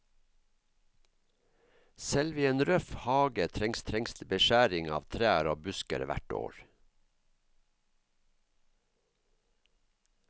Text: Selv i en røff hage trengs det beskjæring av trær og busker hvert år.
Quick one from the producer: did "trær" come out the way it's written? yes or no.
yes